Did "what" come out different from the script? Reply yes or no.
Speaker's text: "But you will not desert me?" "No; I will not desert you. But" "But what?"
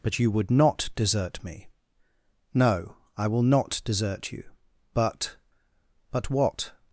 no